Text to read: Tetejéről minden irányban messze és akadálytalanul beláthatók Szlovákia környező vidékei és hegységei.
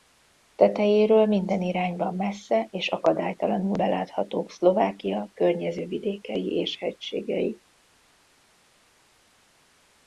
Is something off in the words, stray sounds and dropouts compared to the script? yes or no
no